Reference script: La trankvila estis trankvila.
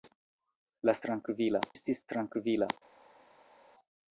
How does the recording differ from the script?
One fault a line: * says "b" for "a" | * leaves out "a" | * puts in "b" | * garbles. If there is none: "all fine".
all fine